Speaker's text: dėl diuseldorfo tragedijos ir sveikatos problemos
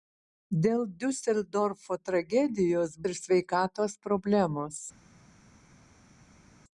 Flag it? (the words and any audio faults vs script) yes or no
no